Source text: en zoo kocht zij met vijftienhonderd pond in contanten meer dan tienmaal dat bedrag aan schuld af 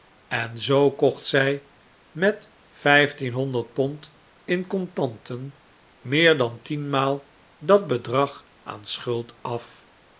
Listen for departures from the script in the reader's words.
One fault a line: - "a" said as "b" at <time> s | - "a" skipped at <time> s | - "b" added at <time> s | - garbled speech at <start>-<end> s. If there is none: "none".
none